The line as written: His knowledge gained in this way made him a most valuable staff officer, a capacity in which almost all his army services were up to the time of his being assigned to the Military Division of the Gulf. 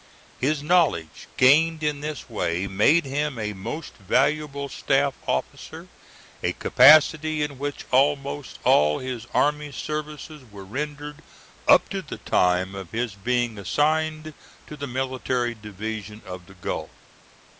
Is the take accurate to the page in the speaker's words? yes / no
no